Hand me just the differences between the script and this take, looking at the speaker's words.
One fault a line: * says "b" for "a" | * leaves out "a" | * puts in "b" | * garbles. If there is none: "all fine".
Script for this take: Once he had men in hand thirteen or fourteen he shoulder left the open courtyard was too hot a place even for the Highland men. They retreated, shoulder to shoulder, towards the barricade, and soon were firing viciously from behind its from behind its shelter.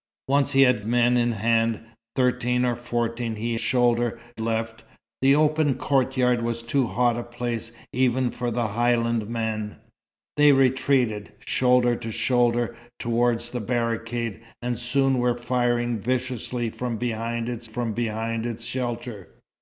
all fine